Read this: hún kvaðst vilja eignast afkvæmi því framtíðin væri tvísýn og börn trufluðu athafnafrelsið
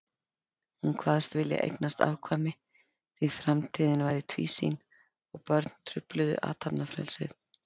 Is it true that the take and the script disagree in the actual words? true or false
false